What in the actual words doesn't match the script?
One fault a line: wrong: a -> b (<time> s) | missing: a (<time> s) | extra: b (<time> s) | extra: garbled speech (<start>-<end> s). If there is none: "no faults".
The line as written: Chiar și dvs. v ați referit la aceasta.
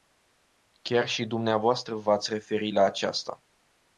no faults